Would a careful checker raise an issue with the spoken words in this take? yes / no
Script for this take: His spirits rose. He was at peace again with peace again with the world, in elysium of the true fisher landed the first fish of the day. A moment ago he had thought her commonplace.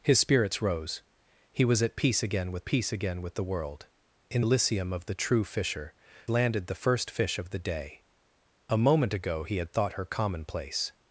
no